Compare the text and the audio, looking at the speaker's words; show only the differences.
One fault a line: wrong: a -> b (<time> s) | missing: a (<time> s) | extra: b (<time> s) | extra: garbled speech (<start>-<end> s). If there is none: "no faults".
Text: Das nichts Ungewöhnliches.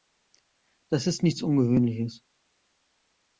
extra: ist (1.1 s)